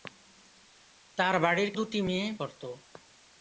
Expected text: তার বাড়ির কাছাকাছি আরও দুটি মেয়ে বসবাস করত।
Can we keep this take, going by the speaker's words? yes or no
no